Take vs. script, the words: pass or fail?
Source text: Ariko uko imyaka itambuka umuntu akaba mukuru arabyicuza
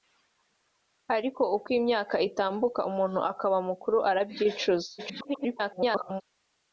fail